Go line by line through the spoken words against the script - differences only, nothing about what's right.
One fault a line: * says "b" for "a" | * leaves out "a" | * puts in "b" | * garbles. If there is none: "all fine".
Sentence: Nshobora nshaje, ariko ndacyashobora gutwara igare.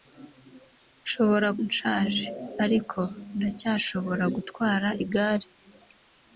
all fine